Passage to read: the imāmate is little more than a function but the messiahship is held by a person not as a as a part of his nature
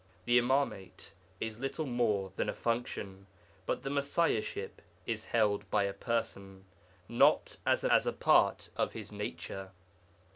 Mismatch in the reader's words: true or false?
false